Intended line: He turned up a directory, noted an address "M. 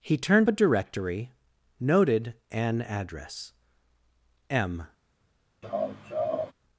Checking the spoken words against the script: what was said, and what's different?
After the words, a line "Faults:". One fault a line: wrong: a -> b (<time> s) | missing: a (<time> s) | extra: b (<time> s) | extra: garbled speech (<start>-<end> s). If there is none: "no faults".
He turned a directory, noted an address "M.
Faults:
missing: up (0.5 s)